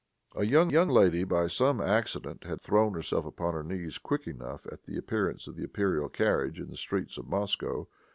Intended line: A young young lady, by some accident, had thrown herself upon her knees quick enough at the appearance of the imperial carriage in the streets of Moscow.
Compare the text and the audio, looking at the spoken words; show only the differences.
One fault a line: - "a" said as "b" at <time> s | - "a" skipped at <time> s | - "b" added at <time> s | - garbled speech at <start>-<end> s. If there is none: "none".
none